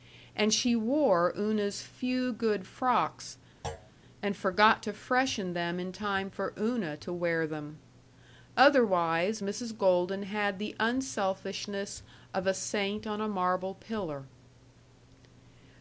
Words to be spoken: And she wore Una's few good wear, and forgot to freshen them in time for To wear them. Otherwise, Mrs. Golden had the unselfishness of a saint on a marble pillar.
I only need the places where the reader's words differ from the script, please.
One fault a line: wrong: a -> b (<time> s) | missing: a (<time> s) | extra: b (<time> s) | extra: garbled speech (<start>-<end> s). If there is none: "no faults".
wrong: wear -> frocks (2.6 s)
extra: Una (6.6 s)